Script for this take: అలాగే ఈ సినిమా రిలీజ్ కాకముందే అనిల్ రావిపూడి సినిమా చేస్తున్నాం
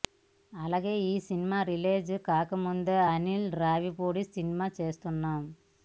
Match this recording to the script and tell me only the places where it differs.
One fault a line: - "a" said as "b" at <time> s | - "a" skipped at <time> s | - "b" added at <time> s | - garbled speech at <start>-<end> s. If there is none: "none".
none